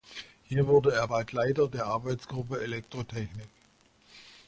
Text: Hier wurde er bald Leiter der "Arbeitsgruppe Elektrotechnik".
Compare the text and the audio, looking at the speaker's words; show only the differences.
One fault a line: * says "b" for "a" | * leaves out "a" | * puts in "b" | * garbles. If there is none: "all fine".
all fine